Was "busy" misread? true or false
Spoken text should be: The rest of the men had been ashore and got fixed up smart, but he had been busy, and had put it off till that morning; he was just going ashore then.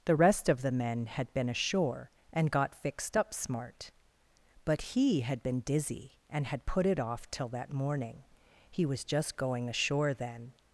true